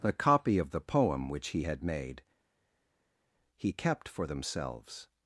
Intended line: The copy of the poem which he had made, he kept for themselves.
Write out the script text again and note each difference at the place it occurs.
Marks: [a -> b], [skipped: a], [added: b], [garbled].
The copy of the poem which he had made, he kept for themselves.